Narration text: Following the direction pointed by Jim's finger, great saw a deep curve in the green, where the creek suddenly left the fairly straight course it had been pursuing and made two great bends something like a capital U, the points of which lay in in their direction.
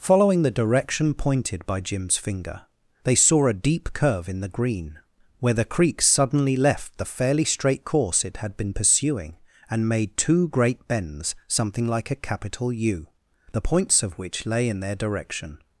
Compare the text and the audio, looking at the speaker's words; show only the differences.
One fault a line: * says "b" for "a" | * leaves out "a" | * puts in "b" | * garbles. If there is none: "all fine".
* says "they" for "great"
* leaves out "in"